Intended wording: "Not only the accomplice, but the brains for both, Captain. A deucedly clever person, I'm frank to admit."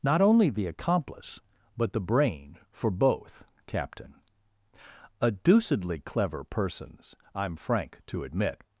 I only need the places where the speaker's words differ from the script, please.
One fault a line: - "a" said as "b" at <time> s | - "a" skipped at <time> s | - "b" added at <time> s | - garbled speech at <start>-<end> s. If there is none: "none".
- "brains" said as "brain" at 2.0 s
- "person" said as "persons" at 6.4 s